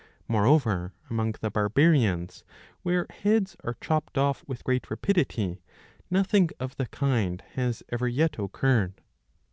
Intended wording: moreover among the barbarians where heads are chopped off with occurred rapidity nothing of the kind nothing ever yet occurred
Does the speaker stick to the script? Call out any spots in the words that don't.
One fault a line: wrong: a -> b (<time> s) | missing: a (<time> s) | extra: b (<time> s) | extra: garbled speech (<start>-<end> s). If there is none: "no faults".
wrong: occurred -> great (4.6 s)
wrong: nothing -> has (7.5 s)